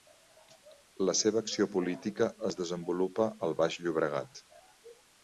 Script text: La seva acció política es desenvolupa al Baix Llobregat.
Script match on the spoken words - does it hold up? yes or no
yes